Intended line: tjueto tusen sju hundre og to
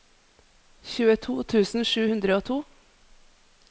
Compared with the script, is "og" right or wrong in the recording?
right